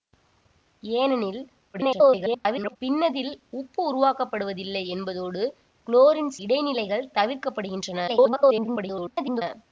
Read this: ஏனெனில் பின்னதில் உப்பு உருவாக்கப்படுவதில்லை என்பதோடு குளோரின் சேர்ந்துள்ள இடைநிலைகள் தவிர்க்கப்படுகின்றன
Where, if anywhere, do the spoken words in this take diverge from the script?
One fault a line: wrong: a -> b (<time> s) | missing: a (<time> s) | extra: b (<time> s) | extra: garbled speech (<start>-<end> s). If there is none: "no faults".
extra: garbled speech (1.7-2.8 s)
missing: சேர்ந்துள்ள (6.3 s)
extra: garbled speech (8.1-9.4 s)